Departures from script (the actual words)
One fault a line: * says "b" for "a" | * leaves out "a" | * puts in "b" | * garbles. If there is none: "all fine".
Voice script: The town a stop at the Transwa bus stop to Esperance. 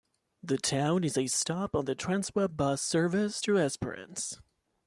* puts in "is"
* says "on" for "at"
* says "service" for "stop"